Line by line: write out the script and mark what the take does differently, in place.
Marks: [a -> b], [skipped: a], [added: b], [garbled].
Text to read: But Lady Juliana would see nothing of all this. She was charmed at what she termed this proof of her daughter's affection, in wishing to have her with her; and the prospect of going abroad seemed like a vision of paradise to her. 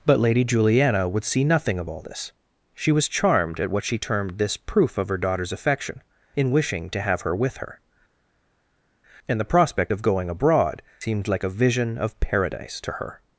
But Lady Juliana would see nothing of all this. She was charmed at what she termed this proof of her daughter's affection, in wishing to have her with her; and the prospect of going abroad seemed like a vision of paradise to her.